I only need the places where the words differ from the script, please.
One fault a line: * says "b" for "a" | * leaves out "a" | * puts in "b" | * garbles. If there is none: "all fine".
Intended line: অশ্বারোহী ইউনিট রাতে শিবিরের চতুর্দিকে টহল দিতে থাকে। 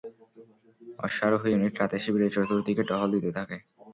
all fine